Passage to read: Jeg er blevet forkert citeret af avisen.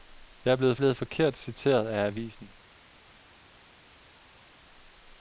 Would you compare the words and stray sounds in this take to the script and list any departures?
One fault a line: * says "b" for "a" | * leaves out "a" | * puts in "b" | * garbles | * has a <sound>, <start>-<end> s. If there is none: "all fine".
* puts in "blevet"